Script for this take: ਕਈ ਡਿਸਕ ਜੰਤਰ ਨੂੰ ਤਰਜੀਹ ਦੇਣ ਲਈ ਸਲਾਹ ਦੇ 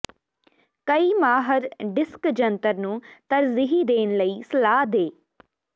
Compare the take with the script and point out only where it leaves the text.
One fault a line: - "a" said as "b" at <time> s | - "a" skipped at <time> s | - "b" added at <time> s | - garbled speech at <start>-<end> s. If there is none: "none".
- "ਮਾਹਰ" added at 1.1 s